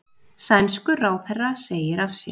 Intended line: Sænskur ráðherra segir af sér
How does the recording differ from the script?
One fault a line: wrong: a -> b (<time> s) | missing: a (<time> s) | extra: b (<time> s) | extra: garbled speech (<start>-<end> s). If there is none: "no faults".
no faults